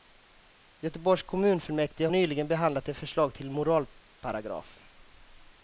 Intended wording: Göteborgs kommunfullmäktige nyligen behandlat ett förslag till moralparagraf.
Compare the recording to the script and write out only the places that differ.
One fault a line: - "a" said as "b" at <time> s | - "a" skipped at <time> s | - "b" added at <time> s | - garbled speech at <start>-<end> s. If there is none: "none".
none